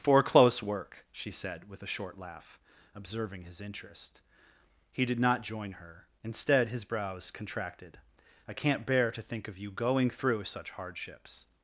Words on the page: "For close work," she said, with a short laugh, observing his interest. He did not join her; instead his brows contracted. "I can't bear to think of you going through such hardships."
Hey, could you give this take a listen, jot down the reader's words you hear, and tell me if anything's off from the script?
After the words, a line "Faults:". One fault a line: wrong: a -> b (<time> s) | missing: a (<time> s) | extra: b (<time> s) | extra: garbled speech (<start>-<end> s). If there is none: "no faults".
"For close work," she said, with a short laugh, observing his interest. He did not join her; instead his brows contracted. "I can't bear to think of you going through such hardships."
Faults:
no faults